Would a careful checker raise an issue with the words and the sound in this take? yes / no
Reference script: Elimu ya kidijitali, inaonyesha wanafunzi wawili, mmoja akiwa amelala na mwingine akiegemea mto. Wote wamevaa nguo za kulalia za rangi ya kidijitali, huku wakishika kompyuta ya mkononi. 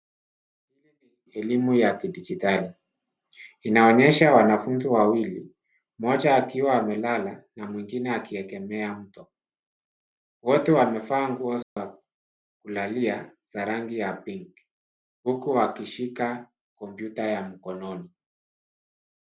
yes